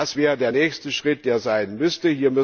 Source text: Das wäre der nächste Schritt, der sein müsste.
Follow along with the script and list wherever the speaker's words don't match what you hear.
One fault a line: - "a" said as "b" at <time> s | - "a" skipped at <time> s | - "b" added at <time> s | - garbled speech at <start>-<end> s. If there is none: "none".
none